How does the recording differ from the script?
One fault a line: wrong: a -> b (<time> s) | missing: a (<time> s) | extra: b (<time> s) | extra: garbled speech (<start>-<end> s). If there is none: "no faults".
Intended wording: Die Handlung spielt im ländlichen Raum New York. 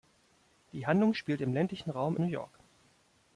no faults